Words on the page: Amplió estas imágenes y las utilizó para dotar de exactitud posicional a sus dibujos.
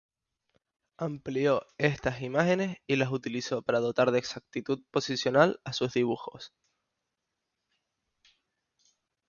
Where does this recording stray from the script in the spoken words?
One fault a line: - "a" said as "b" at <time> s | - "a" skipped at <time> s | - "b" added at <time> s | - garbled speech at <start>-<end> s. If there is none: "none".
none